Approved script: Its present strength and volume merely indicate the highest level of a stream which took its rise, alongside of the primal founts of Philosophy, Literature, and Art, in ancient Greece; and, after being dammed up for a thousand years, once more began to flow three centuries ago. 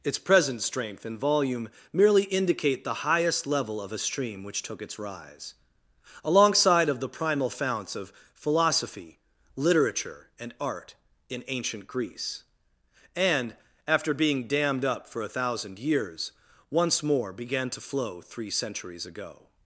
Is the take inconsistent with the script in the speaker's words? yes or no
no